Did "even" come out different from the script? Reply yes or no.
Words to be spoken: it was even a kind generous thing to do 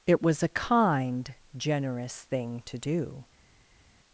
yes